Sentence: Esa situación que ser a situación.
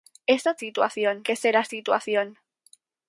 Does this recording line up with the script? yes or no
yes